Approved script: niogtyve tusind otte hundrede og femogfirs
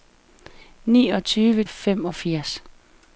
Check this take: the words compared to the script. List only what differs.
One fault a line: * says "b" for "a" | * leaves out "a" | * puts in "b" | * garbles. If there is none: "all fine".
* leaves out "tusind otte hundrede"